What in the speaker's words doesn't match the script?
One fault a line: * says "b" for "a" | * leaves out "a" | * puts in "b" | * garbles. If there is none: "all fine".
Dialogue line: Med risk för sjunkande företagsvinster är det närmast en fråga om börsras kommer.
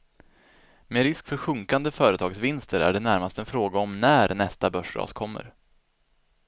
* puts in "när nästa"